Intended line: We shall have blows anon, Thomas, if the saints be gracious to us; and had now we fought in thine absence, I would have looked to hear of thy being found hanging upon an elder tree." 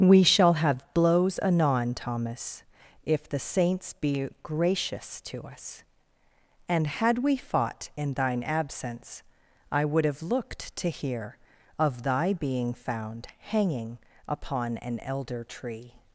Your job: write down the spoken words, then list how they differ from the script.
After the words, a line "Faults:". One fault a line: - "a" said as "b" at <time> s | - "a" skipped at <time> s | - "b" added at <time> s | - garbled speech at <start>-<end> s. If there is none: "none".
We shall have blows anon, Thomas, if the saints be gracious to us; and had we fought in thine absence, I would have looked to hear of thy being found hanging upon an elder tree."
Faults:
- "now" skipped at 7.2 s